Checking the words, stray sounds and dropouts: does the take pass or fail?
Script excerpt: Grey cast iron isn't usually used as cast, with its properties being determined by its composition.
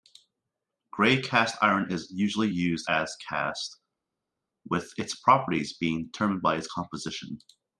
fail